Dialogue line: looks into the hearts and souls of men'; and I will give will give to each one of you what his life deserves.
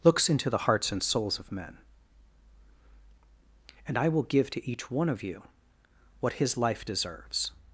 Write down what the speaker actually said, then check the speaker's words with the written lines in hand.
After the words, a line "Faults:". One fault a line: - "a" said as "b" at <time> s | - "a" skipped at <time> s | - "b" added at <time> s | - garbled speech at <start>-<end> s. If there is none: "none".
looks into the hearts and souls of men'; and I will give to each one of you what his life deserves.
Faults:
- "will give" skipped at 4.5 s